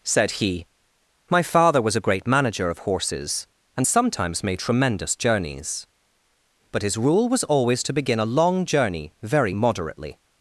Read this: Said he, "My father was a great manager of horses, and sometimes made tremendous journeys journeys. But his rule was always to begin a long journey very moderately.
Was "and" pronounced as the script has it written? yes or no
yes